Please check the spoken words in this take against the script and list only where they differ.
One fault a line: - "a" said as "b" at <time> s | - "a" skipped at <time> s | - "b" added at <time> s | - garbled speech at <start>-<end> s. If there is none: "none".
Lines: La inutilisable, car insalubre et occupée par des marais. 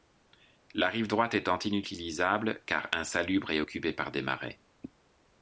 - "rive droite étant" added at 0.9 s